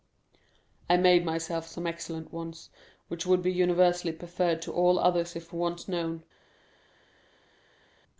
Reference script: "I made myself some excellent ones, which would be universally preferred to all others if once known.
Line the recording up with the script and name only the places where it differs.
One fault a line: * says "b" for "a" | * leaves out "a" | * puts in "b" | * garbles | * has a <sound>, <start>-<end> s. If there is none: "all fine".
all fine